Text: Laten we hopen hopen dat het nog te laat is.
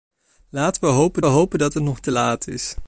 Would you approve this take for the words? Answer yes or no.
yes